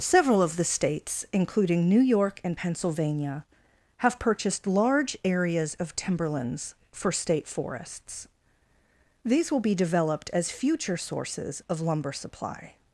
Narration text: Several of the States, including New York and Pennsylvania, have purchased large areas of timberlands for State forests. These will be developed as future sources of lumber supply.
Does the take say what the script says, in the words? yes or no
yes